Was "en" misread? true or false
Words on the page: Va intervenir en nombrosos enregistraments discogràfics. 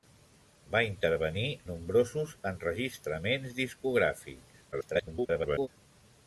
true